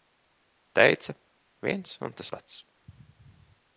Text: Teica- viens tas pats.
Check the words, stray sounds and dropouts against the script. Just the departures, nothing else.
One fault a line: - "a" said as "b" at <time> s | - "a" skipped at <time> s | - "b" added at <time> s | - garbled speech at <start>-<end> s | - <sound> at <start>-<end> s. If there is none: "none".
- "un" added at 2.1 s